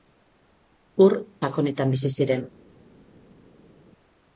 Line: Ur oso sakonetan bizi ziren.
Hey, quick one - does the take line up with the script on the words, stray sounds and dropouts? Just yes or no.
no